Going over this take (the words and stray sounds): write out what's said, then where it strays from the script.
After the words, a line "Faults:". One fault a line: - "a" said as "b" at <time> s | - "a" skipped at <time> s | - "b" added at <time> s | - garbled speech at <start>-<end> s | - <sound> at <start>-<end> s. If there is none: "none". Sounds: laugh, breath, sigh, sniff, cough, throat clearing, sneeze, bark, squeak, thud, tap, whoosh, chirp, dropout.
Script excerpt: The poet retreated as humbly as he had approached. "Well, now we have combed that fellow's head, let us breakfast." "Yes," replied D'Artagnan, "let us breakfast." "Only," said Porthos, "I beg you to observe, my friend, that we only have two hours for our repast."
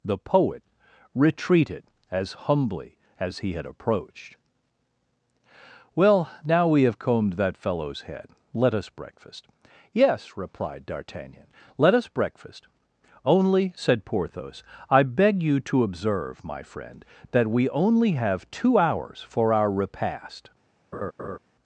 The poet retreated as humbly as he had approached. "Well, now we have combed that fellow's head, let us breakfast." "Yes," replied D'Artagnan, "let us breakfast." "Only," said Porthos, "I beg you to observe, my friend, that we only have two hours for our repast."
Faults:
- laugh at 20.9-21.4 s